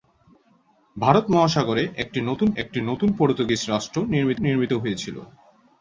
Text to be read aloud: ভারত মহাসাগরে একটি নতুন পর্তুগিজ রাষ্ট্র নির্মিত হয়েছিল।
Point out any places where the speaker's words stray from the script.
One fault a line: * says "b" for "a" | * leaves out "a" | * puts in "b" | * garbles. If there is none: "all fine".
* puts in "একটি নতুন"
* puts in "নির্মিত"